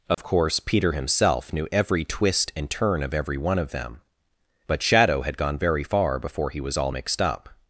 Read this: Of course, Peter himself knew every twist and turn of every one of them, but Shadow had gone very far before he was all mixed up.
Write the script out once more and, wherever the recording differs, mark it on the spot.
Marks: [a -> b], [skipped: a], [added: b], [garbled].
Of course, Peter himself knew every twist and turn of every one of them, but Shadow had gone very far before he was all mixed up.